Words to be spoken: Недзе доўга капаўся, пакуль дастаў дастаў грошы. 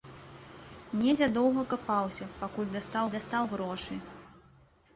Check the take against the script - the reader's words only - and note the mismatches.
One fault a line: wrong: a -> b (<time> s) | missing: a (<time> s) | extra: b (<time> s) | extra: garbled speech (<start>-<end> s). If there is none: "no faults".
no faults